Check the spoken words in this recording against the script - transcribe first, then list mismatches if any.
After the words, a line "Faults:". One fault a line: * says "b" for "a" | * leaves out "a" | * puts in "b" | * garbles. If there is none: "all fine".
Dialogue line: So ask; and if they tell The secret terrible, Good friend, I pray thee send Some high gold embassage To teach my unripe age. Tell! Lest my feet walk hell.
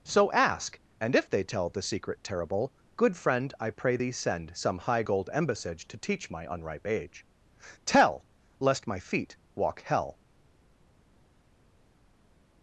So ask; and if they tell The secret terrible, Good friend, I pray thee send Some high gold embassage To teach my unripe age. Tell! Lest my feet walk hell.
Faults:
all fine